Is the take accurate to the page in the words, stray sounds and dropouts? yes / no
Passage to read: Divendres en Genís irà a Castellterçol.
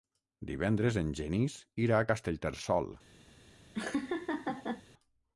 no